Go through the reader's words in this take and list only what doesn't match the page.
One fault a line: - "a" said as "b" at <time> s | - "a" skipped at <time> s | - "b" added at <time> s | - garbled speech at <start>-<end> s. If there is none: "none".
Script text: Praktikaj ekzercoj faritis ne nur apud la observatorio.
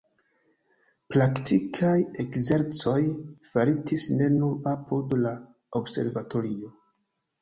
none